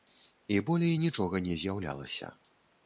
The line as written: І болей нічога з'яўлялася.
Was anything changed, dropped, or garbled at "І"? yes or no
no